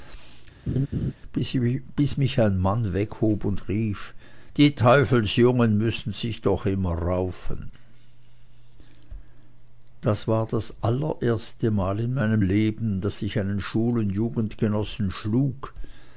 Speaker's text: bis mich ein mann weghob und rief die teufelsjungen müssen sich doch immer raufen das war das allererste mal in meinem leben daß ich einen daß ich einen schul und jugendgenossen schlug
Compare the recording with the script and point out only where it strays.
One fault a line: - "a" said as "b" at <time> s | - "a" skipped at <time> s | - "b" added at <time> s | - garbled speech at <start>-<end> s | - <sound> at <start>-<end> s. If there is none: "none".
- laugh at 0.7-1.1 s
- "daß ich einen" skipped at 13.6 s